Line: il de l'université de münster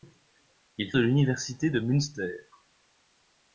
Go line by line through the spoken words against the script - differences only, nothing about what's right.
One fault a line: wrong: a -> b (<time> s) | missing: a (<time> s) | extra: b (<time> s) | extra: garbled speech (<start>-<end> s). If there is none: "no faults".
no faults